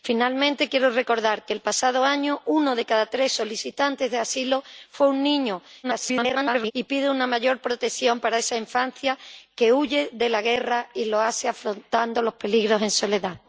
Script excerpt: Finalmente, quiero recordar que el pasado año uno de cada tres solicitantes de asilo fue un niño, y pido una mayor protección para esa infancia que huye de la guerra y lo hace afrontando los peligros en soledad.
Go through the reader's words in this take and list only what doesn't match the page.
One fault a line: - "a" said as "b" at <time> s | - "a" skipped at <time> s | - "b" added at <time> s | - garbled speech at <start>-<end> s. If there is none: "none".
- garbled speech at 5.8-6.7 s